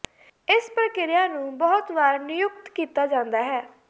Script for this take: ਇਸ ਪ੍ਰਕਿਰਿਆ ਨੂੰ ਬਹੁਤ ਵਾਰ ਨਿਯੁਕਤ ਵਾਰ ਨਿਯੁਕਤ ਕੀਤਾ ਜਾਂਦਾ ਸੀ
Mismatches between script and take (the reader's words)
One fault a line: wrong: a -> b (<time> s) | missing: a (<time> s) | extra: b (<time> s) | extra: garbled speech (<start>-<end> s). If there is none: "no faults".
missing: ਵਾਰ ਨਿਯੁਕਤ (2.7 s)
wrong: ਸੀ -> ਹੈ (3.4 s)